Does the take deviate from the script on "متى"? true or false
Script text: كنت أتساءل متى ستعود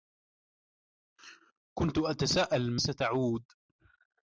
true